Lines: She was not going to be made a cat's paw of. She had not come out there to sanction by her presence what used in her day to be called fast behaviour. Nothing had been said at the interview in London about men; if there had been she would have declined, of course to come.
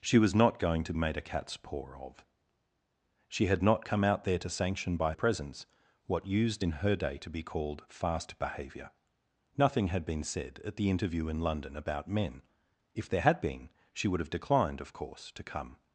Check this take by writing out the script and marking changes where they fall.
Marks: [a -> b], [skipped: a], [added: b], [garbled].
She was not going to [skipped: be] made a cat's paw of. She had not come out there to sanction by [skipped: her] presence what used in her day to be called fast behaviour. Nothing had been said at the interview in London about men; if there had been she would have declined, of course to come.